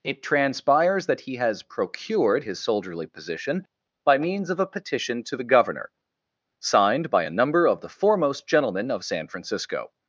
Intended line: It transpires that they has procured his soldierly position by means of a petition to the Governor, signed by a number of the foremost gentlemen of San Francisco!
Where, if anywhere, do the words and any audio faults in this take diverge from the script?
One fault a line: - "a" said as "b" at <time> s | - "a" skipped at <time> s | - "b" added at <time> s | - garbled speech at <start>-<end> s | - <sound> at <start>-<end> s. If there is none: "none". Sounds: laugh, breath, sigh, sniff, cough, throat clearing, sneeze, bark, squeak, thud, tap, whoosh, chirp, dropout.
- "they" said as "he" at 1.2 s